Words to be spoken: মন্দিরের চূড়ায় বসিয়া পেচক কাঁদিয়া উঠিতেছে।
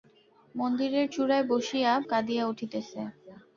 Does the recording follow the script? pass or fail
fail